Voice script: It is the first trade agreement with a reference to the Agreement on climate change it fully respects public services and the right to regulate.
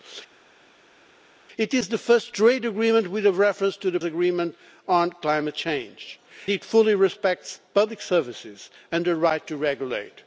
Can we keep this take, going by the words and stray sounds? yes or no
yes